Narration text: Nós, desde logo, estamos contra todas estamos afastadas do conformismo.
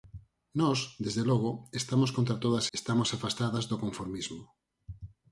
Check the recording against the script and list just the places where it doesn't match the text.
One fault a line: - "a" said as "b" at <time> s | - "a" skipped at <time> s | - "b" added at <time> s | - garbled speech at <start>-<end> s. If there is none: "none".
none